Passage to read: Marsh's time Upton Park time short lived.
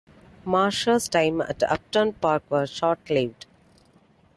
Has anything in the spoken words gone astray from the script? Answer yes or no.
yes